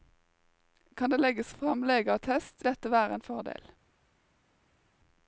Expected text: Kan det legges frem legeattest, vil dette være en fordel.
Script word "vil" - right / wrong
wrong